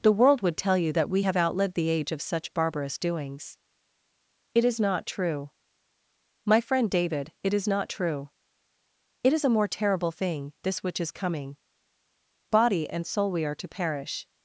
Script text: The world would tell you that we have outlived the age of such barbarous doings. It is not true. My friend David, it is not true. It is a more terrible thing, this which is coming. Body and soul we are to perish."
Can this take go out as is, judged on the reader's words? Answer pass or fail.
pass